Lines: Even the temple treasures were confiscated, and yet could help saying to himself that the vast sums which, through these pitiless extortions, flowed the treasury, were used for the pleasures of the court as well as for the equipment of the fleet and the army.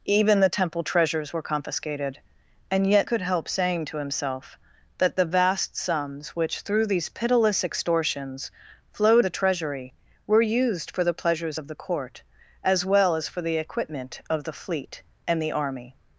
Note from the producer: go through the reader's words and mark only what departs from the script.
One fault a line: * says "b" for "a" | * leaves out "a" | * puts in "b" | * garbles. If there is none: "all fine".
all fine